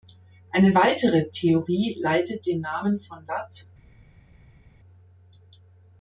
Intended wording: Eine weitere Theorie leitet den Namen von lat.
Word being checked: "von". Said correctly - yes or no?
yes